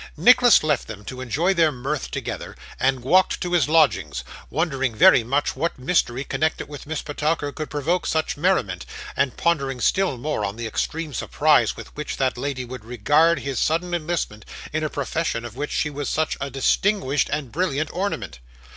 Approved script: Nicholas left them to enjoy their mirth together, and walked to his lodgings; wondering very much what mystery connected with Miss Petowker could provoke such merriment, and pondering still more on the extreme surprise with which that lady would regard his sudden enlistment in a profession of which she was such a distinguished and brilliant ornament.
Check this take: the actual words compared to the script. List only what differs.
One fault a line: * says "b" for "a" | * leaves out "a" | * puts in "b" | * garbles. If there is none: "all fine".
all fine